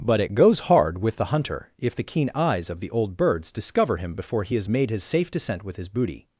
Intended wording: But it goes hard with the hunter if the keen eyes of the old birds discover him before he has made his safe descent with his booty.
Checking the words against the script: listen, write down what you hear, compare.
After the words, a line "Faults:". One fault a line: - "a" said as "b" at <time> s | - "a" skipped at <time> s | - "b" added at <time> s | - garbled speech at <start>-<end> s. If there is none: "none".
But it goes hard with the hunter if the keen eyes of the old birds discover him before he has made his safe descent with his booty.
Faults:
none